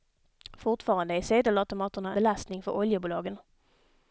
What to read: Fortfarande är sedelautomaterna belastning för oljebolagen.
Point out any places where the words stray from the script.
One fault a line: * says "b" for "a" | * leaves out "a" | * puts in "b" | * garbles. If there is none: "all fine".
all fine